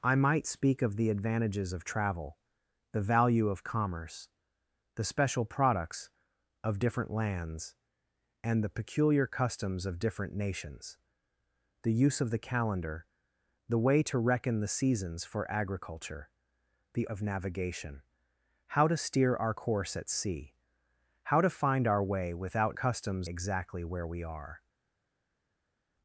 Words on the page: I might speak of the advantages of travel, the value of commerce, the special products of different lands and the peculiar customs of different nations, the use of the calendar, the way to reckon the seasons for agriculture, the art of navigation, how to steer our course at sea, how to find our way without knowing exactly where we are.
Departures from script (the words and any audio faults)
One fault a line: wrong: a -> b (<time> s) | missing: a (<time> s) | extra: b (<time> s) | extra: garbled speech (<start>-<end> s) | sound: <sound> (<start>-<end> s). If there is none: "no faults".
missing: art (17.1 s)
wrong: knowing -> customs (22.7 s)